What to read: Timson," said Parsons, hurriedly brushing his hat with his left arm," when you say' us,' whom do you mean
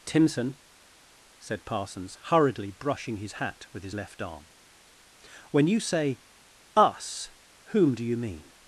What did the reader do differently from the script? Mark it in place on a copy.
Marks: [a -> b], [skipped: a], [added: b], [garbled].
Timson," said Parsons, hurriedly brushing his hat with his left arm," when you say' us,' whom do you mean